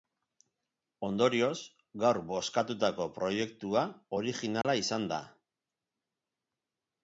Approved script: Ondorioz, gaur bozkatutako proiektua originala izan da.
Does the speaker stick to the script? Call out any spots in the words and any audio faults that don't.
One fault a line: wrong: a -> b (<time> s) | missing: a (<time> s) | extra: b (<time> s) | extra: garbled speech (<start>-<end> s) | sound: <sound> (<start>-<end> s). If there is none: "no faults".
sound: dropout (4.6-4.6 s)